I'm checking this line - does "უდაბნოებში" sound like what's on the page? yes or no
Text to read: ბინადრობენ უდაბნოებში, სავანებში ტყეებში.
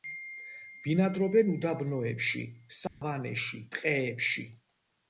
yes